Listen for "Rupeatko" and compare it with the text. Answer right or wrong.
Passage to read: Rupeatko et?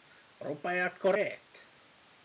right